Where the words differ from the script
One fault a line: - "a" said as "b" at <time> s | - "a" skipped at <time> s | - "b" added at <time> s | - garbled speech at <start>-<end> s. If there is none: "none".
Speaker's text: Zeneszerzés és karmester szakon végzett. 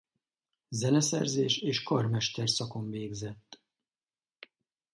none